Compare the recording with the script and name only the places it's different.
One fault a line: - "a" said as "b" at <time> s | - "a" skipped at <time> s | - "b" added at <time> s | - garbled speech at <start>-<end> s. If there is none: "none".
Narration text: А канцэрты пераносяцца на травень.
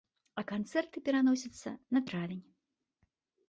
none